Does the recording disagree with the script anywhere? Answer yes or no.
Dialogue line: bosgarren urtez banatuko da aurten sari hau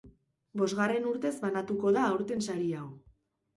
no